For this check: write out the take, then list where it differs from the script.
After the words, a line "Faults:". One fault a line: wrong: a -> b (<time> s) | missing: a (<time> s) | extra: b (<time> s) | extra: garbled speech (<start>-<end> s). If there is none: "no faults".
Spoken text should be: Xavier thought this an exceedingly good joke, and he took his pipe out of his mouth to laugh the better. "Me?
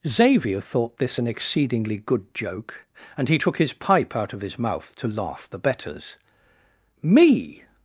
Xavier thought this an exceedingly good joke, and he took his pipe out of his mouth to laugh the betters. "Me?
Faults:
wrong: better -> betters (5.6 s)